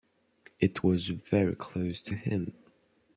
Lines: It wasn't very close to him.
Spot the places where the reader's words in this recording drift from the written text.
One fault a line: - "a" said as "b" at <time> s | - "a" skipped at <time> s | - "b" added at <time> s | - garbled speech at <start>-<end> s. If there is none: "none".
- "wasn't" said as "was" at 0.8 s